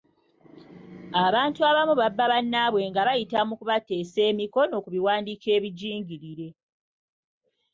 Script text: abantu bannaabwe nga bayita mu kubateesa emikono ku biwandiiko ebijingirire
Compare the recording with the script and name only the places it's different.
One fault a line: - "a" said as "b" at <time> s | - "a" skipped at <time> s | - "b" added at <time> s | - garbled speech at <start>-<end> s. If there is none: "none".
- "abamu babba" added at 1.7 s